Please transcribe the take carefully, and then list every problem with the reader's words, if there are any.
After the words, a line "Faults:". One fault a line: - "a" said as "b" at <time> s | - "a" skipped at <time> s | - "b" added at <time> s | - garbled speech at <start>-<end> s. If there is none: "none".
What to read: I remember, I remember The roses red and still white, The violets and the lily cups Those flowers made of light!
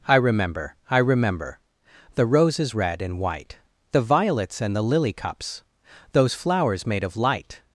I remember, I remember The roses red and white, The violets and the lily cups Those flowers made of light!
Faults:
- "still" skipped at 3.2 s